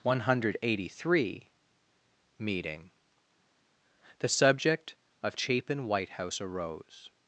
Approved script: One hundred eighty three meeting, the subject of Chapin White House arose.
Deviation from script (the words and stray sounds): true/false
false